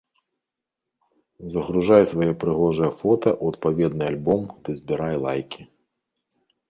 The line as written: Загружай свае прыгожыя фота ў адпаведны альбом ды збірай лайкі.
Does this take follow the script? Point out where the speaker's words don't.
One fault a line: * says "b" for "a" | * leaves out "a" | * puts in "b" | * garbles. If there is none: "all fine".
all fine